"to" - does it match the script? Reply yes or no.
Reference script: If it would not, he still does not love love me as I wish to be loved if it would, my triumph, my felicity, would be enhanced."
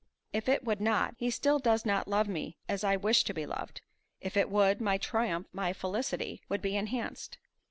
yes